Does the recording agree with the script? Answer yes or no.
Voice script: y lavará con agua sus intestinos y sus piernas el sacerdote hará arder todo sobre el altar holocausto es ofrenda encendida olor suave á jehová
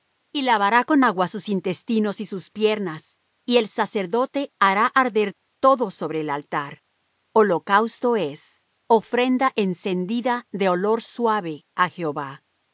no